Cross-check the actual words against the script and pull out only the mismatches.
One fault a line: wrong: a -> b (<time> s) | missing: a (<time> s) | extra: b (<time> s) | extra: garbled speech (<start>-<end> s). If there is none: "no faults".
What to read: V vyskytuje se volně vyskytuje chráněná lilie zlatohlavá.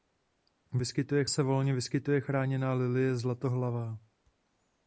no faults